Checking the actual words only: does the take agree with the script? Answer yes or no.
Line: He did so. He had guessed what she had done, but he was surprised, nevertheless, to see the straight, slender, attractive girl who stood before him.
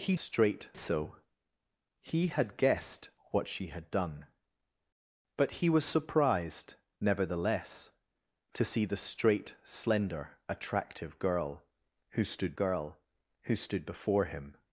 no